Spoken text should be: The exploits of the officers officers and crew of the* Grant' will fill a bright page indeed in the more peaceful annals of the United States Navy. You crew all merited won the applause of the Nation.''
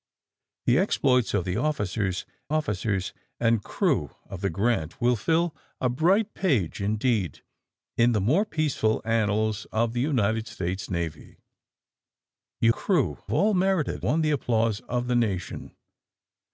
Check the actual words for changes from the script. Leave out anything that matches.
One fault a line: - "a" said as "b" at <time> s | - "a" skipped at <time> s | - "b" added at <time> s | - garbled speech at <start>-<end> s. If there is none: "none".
none